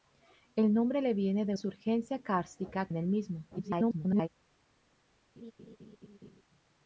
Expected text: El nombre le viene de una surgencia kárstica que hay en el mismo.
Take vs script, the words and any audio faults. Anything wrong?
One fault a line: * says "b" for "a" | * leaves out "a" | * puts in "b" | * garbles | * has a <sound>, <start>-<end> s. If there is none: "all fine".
* leaves out "una"
* leaves out "que hay"
* garbles
* has a laugh, 5.4-6.4 s